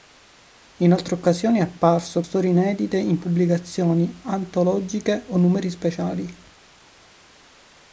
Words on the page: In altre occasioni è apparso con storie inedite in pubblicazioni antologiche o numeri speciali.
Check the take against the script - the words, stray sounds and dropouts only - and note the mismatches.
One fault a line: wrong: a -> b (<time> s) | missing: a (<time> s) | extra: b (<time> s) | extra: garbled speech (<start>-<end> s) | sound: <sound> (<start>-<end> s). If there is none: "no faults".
missing: con (2.2 s)